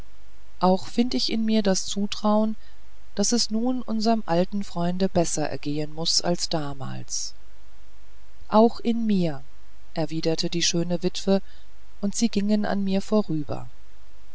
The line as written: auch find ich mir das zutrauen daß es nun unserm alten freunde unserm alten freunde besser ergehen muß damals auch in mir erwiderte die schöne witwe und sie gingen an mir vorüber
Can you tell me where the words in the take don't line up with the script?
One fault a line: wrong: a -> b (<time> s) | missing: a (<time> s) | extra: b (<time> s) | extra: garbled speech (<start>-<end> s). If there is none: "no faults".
extra: in (1.3 s)
missing: unserm alten freunde (5.1 s)
extra: als (6.2 s)